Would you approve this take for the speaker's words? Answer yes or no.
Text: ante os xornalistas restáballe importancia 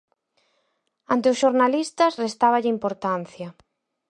yes